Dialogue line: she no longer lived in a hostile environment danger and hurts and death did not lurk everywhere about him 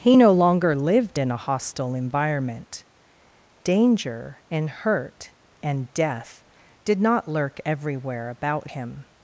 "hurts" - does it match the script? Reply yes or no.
no